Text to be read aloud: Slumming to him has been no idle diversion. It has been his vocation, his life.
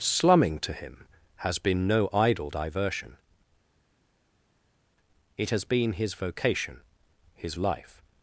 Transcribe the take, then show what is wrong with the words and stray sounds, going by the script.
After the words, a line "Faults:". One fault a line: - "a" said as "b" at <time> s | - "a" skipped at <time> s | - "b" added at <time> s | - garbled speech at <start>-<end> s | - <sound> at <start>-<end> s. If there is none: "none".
Slumming to him has been no idle diversion. It has been his vocation, his life.
Faults:
none